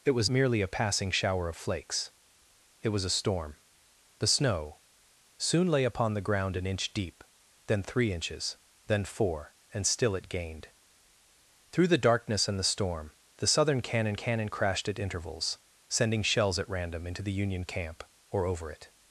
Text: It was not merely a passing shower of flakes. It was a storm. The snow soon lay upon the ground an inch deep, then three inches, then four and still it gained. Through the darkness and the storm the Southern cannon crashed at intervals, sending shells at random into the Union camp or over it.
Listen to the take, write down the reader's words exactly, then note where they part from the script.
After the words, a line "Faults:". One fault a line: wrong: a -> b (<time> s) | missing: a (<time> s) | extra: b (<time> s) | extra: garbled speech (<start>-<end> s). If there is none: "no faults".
It was merely a passing shower of flakes. It was a storm. The snow soon lay upon the ground an inch deep, then three inches, then four and still it gained. Through the darkness and the storm the Southern cannon cannon crashed at intervals, sending shells at random into the Union camp or over it.
Faults:
missing: not (0.3 s)
extra: cannon (14.1 s)